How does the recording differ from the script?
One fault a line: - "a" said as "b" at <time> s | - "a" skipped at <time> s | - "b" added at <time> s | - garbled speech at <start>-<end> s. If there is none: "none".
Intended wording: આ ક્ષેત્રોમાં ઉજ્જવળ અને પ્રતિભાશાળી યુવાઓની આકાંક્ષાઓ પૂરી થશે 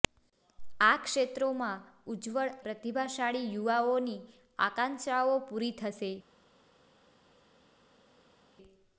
- "અને" skipped at 2.5 s